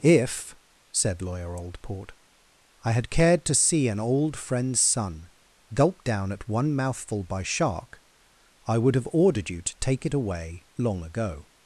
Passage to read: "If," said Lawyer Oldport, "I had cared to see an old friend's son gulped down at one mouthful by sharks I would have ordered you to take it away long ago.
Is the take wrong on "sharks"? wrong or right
wrong